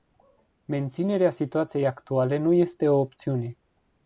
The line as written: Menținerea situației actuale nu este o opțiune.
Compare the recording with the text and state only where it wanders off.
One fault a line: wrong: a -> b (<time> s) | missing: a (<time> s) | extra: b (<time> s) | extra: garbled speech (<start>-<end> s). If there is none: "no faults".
no faults